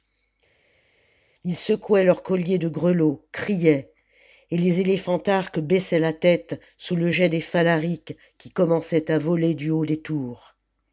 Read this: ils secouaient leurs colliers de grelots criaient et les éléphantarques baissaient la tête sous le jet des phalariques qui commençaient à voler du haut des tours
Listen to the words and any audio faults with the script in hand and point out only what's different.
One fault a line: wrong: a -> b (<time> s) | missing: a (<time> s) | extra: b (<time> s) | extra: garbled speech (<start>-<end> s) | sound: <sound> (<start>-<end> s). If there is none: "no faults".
no faults